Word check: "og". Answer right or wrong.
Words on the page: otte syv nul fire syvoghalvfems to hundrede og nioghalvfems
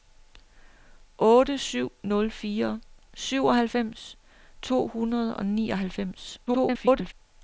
right